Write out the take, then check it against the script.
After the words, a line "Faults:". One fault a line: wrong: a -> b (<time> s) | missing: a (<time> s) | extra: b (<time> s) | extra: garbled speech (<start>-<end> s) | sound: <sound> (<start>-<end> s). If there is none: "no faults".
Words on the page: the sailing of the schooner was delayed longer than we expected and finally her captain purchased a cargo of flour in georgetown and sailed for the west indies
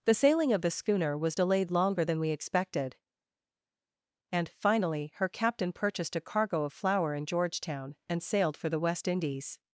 the sailing of the schooner was delayed longer than we expected and finally her captain purchased a cargo of flour in georgetown and sailed for the west indies
Faults:
no faults